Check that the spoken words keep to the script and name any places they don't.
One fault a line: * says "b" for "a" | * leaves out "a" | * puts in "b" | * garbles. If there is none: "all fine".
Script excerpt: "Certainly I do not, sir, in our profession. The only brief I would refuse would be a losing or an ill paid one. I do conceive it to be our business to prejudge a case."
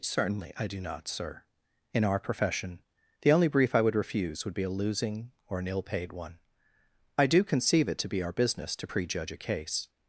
all fine